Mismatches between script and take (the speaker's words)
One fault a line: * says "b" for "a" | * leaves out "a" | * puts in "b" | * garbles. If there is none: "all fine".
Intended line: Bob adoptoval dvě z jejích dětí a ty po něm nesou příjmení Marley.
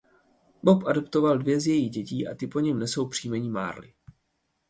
all fine